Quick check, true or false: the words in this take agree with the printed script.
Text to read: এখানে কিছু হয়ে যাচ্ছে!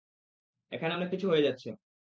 false